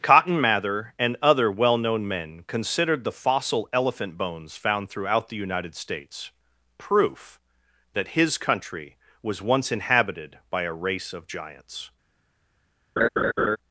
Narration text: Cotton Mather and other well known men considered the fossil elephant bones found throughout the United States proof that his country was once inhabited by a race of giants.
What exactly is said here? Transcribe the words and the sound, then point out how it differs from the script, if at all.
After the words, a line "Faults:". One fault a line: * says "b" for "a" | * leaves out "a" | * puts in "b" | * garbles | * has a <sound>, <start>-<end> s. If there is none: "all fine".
Cotton Mather and other well known men considered the fossil elephant bones found throughout the United States proof that his country was once inhabited by a race of giants.
Faults:
* has a laugh, 13.0-13.6 s